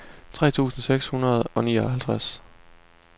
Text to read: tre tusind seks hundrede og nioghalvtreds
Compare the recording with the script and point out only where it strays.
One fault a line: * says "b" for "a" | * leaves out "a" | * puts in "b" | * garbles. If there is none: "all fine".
all fine